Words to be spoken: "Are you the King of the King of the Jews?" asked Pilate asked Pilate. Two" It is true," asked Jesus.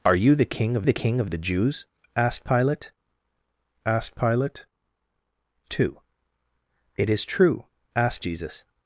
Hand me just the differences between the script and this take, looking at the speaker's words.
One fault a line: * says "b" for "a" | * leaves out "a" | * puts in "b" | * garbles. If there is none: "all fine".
all fine